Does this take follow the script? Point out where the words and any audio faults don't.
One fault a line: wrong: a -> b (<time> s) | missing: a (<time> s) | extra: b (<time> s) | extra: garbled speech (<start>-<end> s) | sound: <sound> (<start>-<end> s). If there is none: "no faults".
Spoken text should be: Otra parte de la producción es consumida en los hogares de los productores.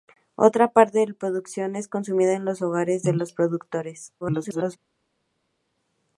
extra: garbled speech (4.2-4.8 s)